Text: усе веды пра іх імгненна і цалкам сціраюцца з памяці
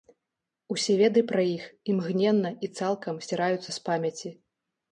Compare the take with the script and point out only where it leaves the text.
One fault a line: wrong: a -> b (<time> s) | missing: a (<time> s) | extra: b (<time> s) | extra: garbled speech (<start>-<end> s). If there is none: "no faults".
no faults